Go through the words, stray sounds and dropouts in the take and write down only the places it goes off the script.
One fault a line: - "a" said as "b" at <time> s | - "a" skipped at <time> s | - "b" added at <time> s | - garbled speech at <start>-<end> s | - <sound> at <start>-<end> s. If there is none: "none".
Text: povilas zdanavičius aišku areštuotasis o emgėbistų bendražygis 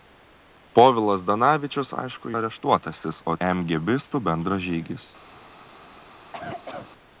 - cough at 6.2-6.9 s